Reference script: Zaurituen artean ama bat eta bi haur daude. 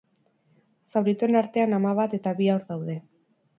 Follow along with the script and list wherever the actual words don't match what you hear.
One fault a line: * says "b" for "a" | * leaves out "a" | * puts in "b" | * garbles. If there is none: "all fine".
all fine